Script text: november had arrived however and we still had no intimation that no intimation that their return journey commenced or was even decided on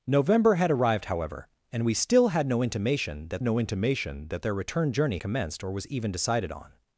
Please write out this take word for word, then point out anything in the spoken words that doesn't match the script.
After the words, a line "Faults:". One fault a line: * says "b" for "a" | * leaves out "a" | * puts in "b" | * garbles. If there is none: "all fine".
november had arrived however and we still had no intimation that no intimation that their return journey commenced or was even decided on
Faults:
all fine